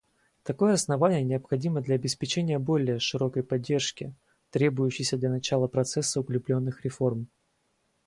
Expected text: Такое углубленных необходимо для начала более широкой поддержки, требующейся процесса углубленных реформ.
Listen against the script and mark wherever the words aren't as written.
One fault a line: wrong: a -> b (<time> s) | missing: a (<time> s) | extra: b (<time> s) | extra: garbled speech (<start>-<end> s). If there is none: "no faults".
wrong: углубленных -> основание (0.7 s)
wrong: начала -> обеспечения (1.9 s)
extra: для начала (5.2 s)